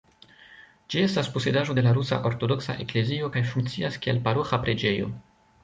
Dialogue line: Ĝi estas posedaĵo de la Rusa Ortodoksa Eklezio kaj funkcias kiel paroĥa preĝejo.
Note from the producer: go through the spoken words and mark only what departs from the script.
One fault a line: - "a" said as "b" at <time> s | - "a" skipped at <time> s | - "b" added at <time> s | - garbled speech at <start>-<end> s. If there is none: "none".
none